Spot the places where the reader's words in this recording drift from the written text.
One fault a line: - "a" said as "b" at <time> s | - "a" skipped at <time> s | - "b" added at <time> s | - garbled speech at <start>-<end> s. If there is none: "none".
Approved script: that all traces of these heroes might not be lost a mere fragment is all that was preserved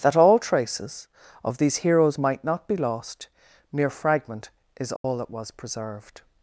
- "a" skipped at 3.3 s